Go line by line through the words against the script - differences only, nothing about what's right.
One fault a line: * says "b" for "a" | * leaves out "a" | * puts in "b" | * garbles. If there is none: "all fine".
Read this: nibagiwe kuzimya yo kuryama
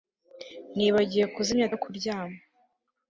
all fine